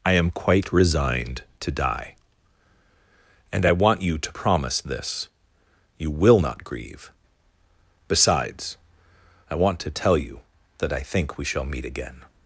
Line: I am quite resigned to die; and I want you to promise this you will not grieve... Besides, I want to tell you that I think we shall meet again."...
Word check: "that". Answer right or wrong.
right